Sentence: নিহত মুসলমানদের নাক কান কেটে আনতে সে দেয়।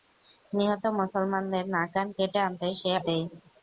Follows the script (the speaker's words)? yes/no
yes